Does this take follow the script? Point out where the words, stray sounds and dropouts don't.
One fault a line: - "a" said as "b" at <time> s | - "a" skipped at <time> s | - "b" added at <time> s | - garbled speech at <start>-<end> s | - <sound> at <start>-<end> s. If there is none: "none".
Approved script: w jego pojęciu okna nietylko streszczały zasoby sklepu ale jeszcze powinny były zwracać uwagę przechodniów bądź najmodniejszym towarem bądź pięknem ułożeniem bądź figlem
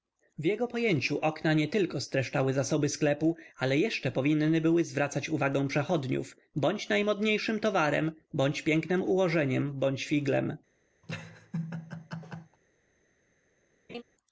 - laugh at 11.0-12.6 s
- laugh at 13.9-14.0 s